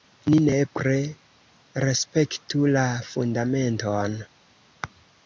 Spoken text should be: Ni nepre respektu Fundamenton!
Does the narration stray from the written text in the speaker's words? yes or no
yes